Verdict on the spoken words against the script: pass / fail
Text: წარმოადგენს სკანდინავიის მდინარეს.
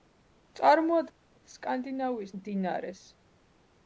pass